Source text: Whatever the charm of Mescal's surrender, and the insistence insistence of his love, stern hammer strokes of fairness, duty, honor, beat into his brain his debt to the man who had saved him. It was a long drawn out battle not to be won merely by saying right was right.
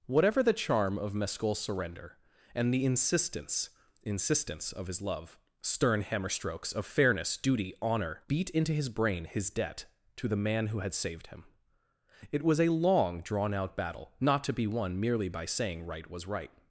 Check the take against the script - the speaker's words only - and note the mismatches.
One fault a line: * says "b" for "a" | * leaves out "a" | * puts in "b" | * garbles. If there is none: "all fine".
all fine